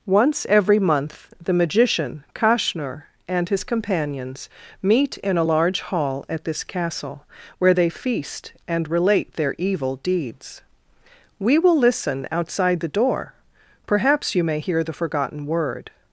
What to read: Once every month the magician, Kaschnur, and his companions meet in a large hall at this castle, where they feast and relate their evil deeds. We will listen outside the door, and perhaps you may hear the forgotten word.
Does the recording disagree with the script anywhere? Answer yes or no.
yes